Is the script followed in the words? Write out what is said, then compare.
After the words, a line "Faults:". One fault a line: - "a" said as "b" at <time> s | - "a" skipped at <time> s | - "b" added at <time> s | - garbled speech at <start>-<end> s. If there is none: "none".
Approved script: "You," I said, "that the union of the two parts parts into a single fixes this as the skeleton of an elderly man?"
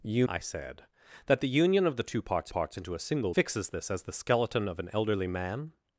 "You," I said, "that the union of the two parts parts into a single fixes this as the skeleton of an elderly man?"
Faults:
none